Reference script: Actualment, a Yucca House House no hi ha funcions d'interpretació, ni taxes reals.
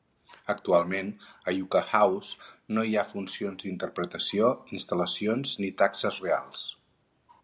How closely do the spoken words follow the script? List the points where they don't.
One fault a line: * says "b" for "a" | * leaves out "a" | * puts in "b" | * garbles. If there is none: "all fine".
* leaves out "House"
* puts in "instal·lacions"